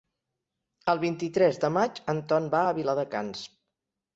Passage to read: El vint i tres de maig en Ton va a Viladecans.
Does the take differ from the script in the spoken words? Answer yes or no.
no